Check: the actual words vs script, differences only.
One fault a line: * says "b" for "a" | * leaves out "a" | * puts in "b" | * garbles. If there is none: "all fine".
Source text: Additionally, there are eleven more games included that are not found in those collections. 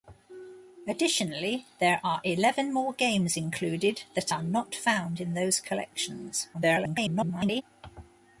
* garbles